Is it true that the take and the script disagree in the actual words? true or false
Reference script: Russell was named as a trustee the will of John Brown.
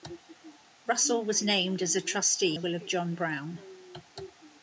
false